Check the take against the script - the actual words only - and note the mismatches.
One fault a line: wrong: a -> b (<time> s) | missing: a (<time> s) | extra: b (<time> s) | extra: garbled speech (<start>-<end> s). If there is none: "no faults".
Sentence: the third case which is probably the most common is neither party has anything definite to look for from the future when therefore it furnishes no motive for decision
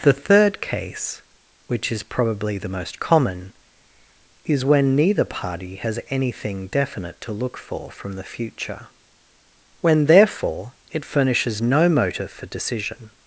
extra: when (4.7 s)